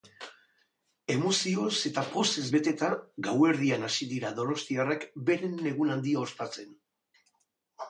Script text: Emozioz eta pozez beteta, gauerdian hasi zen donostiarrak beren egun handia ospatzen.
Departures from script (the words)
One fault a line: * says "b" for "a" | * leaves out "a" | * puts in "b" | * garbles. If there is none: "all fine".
* says "dira" for "zen"